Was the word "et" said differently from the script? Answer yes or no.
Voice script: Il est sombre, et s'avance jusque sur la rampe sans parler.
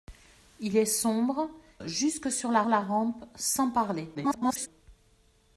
yes